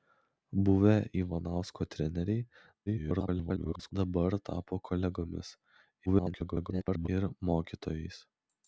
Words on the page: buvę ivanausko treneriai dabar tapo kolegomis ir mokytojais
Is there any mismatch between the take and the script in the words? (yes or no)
yes